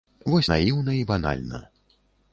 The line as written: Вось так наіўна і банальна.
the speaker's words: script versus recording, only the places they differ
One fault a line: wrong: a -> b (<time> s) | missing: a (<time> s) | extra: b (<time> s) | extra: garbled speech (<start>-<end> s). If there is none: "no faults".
missing: так (0.5 s)